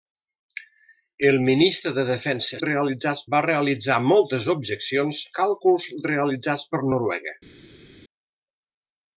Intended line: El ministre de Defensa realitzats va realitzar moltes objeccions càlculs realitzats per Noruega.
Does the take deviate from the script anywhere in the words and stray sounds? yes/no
no